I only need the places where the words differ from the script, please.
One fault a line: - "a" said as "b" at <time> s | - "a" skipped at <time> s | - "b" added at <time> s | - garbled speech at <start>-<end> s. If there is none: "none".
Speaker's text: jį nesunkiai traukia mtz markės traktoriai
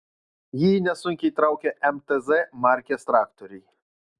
none